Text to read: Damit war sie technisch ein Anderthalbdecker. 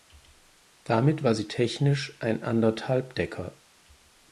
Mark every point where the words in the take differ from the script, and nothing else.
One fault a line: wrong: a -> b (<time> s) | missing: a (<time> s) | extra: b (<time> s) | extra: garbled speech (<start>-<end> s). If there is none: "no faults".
no faults